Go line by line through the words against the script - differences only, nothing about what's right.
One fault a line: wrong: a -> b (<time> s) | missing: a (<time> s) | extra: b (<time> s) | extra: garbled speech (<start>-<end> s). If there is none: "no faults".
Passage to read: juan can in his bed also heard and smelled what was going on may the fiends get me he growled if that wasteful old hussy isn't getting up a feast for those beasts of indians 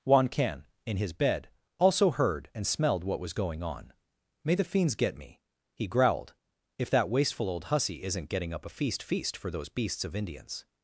extra: feast (9.0 s)